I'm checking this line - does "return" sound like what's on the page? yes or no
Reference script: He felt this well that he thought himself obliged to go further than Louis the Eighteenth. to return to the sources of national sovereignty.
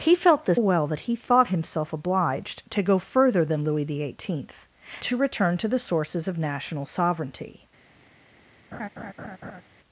yes